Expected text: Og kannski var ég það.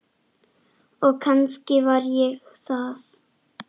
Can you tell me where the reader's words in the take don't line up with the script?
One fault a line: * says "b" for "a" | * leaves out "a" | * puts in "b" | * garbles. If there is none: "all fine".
all fine